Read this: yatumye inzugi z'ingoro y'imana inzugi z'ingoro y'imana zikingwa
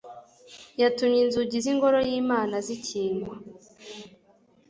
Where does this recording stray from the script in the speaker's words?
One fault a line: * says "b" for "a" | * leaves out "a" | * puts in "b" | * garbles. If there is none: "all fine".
* leaves out "inzugi z'ingoro y'imana"